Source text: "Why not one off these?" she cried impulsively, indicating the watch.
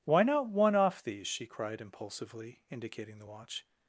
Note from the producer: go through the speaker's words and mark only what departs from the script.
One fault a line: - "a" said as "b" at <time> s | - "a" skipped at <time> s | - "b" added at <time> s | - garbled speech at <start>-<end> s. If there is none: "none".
none